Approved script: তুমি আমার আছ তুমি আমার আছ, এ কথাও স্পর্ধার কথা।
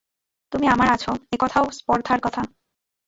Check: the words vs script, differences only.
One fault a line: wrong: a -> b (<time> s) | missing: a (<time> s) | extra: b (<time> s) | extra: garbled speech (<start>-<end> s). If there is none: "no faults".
missing: তুমি আমার আছ (1.0 s)